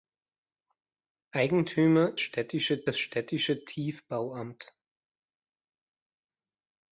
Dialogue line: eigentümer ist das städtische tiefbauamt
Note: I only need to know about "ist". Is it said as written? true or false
false